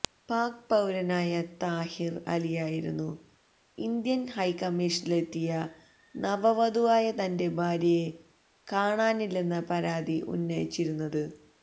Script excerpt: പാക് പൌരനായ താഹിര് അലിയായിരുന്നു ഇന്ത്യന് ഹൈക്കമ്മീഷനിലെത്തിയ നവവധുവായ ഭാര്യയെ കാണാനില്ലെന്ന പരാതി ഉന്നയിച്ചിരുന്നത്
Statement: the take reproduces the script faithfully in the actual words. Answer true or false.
false